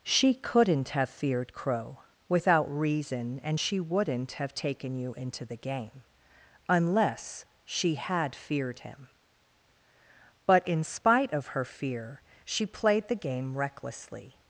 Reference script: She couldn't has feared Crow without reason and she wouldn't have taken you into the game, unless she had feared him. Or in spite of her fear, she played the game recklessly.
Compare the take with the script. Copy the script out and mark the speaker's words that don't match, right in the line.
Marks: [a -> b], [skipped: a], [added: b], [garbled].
She couldn't [has -> have] feared Crow without reason and she wouldn't have taken you into the game, unless she had feared him. [Or -> But] in spite of her fear, she played the game recklessly.